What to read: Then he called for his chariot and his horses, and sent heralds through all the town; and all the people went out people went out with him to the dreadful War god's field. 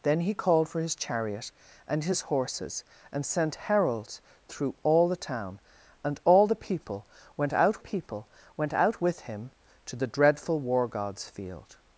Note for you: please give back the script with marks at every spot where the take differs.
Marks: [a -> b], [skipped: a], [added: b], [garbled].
Then he called for his chariot and his horses, and sent heralds through all the town; and all the people went out people went out with him to the dreadful War god's field.